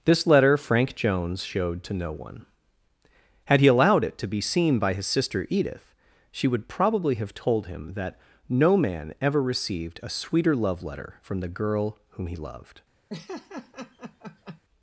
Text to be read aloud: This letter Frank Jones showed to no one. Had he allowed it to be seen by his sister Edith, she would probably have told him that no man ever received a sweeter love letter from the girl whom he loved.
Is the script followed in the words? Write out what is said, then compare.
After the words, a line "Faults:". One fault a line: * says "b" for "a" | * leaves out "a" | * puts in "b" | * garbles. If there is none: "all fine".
This letter Frank Jones showed to no one. Had he allowed it to be seen by his sister Edith, she would probably have told him that no man ever received a sweeter love letter from the girl whom he loved.
Faults:
all fine